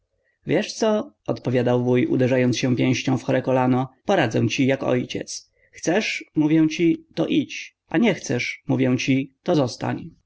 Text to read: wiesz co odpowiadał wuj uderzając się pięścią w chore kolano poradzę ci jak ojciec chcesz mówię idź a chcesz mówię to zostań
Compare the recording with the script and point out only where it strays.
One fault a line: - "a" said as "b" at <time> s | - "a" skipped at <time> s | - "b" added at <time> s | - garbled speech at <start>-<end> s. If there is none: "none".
- "ci to" added at 6.7 s
- "nie" added at 8.0 s
- "ci" added at 9.0 s